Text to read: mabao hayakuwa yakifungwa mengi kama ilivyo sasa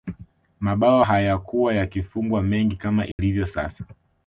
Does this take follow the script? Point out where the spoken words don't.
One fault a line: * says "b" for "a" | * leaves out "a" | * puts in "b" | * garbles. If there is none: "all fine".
all fine